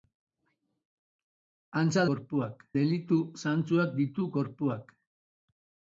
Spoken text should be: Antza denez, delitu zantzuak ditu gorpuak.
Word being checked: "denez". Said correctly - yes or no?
no